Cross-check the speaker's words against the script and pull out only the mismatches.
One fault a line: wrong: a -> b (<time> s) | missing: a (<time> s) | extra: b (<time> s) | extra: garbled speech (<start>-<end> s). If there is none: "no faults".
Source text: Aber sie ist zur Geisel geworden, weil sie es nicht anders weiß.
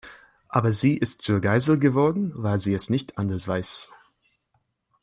no faults